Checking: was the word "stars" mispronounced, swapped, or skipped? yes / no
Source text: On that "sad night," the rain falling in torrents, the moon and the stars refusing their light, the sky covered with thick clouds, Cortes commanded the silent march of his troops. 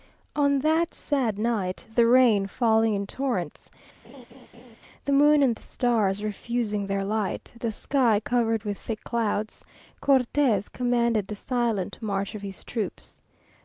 no